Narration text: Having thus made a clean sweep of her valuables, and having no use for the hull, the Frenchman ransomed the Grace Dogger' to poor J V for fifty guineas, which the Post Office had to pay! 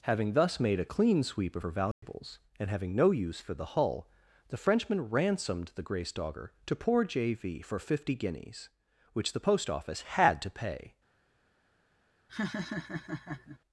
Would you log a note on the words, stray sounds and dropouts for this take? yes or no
yes